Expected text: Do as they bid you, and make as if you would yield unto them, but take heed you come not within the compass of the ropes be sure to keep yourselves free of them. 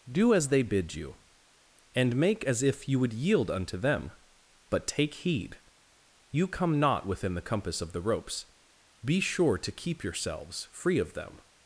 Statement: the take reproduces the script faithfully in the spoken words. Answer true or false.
true